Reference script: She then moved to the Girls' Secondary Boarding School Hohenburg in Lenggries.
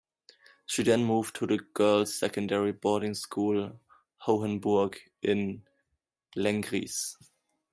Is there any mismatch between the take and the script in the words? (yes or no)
no